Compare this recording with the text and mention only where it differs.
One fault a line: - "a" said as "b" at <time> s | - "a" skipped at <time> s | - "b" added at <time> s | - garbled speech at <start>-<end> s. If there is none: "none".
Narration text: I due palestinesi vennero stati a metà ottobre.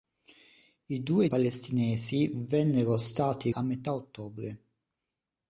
none